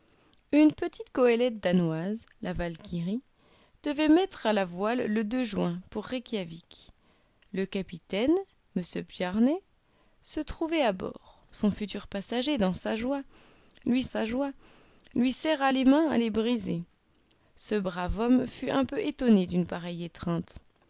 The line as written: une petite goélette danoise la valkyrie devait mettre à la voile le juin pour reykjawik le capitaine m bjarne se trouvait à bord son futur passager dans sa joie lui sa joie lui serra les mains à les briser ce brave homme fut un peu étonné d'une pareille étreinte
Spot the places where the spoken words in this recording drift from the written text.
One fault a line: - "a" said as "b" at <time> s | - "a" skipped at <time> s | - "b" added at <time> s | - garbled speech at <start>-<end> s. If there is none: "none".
none